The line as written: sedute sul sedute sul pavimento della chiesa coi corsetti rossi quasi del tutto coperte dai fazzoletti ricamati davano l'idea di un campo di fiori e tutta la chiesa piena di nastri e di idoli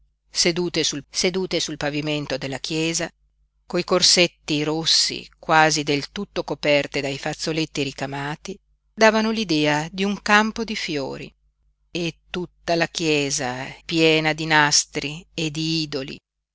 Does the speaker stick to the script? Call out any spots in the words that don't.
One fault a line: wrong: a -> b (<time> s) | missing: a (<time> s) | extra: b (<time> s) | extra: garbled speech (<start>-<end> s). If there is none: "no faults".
no faults